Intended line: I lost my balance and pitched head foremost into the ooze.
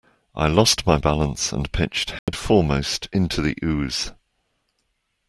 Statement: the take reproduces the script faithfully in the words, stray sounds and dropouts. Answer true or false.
false